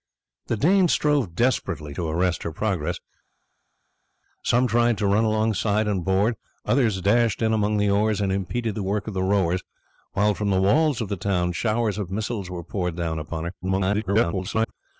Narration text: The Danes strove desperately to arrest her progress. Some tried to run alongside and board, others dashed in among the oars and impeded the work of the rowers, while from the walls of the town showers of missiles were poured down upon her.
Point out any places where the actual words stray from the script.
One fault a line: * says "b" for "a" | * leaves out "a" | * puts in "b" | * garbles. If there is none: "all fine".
* garbles